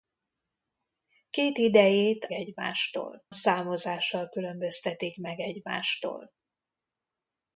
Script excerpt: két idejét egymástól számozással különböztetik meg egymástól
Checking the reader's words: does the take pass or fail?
pass